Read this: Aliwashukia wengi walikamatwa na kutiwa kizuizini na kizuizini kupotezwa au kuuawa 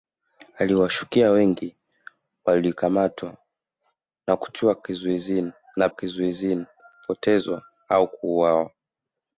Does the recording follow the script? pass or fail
pass